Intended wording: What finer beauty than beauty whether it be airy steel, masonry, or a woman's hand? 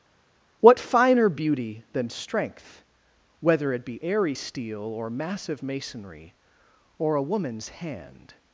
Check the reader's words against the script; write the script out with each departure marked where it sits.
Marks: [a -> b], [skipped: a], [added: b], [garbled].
What finer beauty than [beauty -> strength] whether it be airy steel, [added: or massive] masonry, or a woman's hand?